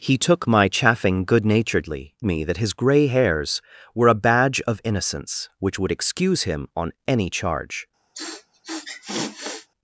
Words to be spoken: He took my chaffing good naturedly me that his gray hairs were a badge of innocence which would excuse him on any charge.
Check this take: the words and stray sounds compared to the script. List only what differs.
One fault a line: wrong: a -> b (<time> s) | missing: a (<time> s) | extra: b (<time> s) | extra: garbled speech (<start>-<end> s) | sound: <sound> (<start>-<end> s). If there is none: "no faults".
sound: sniff (8.1-9.7 s)